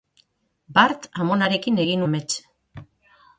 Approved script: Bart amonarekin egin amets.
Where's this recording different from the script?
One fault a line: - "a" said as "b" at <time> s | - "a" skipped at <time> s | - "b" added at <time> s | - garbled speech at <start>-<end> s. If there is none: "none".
none